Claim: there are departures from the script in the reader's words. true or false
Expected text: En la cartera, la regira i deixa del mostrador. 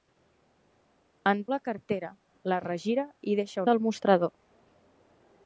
false